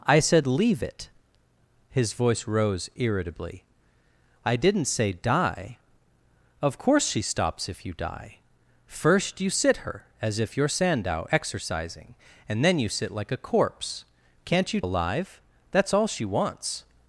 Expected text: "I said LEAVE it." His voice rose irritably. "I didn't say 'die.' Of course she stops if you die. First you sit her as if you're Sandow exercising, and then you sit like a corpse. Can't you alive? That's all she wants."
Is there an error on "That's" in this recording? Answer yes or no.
no